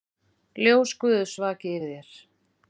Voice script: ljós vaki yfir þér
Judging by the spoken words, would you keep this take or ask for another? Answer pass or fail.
fail